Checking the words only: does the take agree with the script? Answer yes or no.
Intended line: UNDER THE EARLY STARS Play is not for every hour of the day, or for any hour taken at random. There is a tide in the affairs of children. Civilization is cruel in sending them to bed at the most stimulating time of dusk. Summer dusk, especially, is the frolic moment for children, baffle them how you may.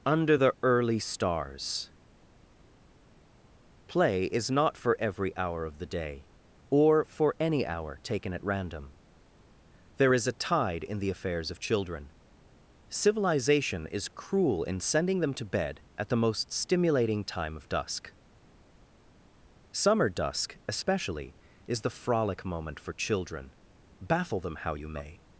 yes